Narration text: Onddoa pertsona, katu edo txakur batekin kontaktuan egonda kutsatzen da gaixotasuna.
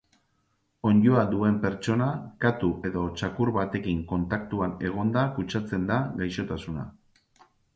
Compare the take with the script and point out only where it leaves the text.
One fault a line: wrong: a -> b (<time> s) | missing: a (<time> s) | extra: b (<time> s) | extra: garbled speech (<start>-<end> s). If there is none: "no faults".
extra: duen (1.3 s)